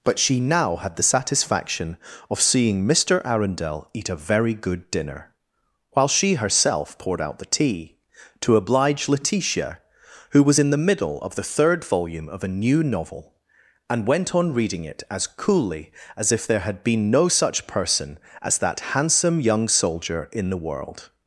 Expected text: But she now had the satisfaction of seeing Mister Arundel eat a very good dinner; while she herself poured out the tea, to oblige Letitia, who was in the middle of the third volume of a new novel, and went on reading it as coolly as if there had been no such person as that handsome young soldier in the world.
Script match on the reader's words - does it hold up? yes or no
yes